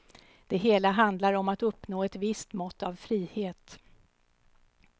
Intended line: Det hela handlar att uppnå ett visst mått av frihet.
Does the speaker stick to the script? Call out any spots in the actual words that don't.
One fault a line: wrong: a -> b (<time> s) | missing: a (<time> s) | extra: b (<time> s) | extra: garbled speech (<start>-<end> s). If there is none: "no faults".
extra: om (1.3 s)